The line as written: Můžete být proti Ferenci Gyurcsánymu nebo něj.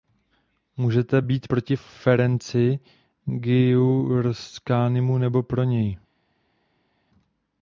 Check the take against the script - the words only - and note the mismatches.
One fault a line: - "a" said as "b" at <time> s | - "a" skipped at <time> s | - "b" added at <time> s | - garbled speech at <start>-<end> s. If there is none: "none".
- "pro" added at 5.4 s